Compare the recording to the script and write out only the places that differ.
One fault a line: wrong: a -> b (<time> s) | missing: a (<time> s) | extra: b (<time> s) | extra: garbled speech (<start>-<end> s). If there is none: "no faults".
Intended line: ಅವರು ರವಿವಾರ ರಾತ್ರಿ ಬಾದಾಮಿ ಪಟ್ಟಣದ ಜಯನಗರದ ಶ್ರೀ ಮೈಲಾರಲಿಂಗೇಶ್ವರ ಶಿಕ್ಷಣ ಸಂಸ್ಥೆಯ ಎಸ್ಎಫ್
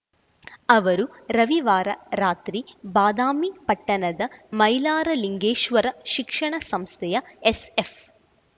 missing: ಜಯನಗರದ ಶ್ರೀ (4.2 s)